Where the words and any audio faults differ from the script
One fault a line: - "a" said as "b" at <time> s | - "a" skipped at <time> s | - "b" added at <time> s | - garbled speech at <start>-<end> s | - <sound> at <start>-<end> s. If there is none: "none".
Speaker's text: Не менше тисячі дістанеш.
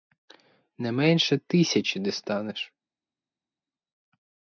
none